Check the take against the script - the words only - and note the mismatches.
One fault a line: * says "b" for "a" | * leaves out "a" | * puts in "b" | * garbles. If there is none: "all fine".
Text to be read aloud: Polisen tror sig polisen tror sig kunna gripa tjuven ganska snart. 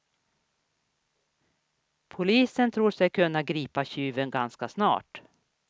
* leaves out "polisen tror sig"